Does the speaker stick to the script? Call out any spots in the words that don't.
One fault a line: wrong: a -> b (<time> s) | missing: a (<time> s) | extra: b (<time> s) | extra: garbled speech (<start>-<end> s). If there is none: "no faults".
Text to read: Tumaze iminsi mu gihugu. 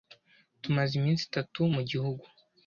extra: itatu (1.3 s)